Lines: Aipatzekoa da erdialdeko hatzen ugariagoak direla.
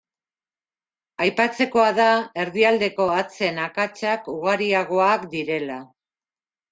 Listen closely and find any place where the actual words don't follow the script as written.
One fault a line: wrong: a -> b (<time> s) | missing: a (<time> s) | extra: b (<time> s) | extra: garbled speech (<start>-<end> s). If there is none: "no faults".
extra: akatsak (3.6 s)